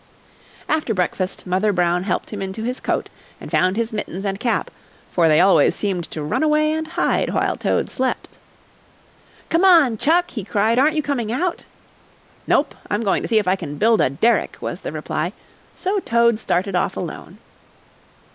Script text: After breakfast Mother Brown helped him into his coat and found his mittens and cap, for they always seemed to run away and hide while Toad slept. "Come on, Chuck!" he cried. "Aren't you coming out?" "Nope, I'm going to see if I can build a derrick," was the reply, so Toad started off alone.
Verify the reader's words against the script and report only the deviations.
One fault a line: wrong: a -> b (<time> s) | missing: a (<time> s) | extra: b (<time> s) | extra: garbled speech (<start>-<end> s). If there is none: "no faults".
no faults